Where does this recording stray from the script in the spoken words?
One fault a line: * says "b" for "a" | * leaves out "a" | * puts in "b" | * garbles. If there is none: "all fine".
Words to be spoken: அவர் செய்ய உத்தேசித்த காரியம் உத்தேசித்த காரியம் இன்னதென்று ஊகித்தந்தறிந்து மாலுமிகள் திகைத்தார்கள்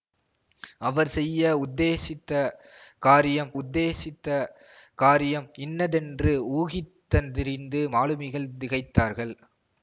all fine